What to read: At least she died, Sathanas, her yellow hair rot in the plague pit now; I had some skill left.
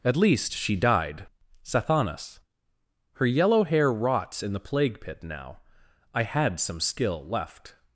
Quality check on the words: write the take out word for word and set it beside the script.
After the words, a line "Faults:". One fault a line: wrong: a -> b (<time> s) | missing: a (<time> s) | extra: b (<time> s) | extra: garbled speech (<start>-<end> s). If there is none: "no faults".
At least she died, Sathanas, her yellow hair rots in the plague pit now; I had some skill left.
Faults:
wrong: rot -> rots (3.9 s)